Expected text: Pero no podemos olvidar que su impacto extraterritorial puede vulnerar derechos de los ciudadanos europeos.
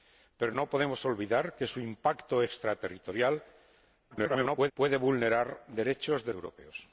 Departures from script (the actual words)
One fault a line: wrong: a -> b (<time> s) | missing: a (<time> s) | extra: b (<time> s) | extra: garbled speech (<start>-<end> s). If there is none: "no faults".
extra: garbled speech (4.1-4.7 s)
missing: los ciudadanos (6.3 s)